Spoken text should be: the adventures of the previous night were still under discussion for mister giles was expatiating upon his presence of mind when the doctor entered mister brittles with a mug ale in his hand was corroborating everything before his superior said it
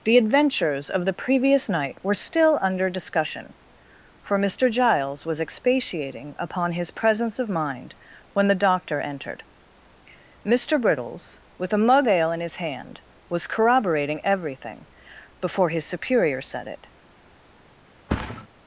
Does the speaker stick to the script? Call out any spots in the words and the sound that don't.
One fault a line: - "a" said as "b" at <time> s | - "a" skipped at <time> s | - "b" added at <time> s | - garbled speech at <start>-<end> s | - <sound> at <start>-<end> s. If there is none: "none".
- thud at 18.1-18.5 s